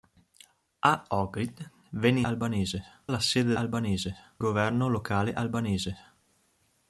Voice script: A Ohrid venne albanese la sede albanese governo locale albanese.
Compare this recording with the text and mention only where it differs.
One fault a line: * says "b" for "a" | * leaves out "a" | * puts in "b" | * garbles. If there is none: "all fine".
all fine